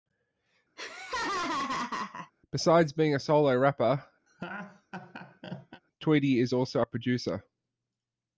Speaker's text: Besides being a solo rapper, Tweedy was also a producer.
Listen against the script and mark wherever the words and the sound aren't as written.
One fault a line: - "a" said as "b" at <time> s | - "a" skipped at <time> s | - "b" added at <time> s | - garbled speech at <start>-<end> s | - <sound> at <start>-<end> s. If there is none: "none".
- laugh at 0.8-2.3 s
- laugh at 4.3-5.8 s
- "was" said as "is" at 6.4 s